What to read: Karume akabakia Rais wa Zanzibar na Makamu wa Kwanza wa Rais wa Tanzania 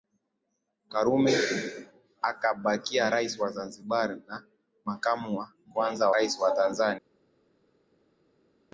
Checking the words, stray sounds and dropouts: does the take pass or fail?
fail